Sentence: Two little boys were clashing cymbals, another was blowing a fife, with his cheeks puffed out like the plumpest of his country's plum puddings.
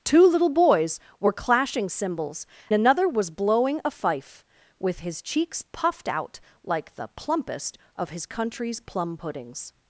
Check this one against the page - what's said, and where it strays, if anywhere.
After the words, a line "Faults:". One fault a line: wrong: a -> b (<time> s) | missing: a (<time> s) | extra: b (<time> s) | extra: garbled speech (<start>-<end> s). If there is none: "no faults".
Two little boys were clashing cymbals, another was blowing a fife, with his cheeks puffed out like the plumpest of his country's plum puddings.
Faults:
no faults